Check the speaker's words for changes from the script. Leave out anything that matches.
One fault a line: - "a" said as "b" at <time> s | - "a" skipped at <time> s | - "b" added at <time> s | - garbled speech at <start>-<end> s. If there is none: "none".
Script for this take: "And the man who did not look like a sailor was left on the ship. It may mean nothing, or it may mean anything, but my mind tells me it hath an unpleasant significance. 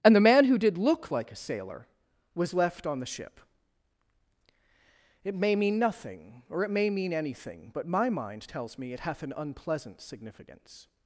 - "not" skipped at 0.8 s